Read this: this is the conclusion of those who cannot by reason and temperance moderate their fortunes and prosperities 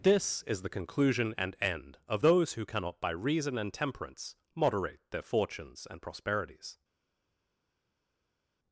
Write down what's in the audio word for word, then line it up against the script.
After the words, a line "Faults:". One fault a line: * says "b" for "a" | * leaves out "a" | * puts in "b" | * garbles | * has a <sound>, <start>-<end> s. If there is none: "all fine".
this is the conclusion and end of those who cannot by reason and temperance moderate their fortunes and prosperities
Faults:
* puts in "and end"